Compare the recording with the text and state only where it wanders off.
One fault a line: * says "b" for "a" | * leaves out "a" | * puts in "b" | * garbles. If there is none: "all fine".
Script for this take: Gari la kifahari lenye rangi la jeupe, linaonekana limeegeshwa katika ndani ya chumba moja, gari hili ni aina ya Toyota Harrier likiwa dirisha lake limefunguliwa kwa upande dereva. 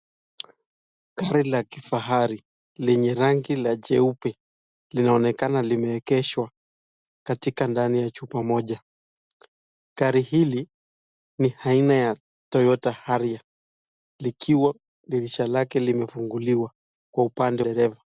all fine